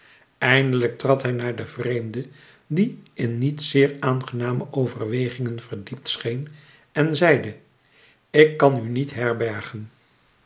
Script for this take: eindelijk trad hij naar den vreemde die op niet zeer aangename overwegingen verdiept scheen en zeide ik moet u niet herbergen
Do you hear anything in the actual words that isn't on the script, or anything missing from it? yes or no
yes